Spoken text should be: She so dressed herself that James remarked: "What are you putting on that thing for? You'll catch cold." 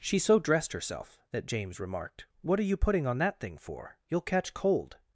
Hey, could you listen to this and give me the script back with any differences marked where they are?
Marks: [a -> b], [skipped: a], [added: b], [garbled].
She so dressed herself that James remarked: "What are you putting on that thing for? You'll catch cold."